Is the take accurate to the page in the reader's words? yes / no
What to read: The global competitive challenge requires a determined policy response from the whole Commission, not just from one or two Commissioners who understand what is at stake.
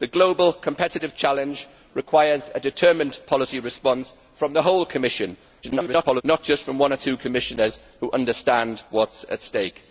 no